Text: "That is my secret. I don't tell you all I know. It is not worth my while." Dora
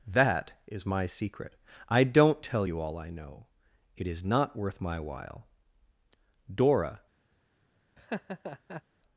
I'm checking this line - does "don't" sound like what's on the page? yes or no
yes